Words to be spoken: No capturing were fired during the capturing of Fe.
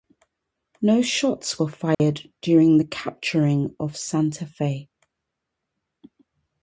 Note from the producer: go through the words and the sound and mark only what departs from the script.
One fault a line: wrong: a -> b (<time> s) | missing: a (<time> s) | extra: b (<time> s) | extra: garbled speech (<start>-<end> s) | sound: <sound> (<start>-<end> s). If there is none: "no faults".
wrong: capturing -> shots (1.0 s)
sound: dropout (1.9-2.0 s)
extra: Santa (4.0 s)